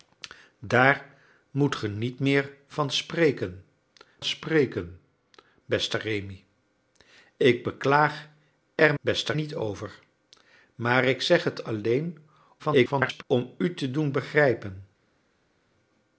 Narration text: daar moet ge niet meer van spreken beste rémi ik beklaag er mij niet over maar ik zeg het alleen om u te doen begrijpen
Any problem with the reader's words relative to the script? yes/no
yes